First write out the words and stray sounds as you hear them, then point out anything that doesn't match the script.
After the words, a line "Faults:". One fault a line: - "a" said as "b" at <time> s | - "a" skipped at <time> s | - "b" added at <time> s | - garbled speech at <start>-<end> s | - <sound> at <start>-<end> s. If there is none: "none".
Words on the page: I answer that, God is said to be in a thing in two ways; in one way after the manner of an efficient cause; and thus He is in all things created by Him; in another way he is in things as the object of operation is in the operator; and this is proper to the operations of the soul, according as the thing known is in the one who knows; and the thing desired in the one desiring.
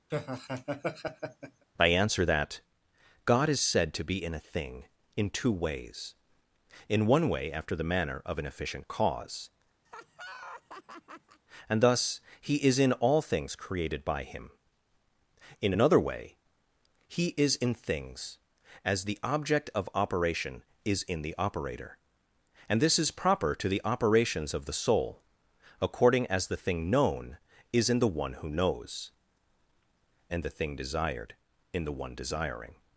I answer that, God is said to be in a thing in two ways; in one way after the manner of an efficient cause; and thus He is in all things created by Him; in another way he is in things as the object of operation is in the operator; and this is proper to the operations of the soul, according as the thing known is in the one who knows; and the thing desired in the one desiring.
Faults:
- laugh at 0.1-1.6 s
- laugh at 9.8-11.4 s